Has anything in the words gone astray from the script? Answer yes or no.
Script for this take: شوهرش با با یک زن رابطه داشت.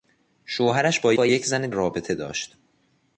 no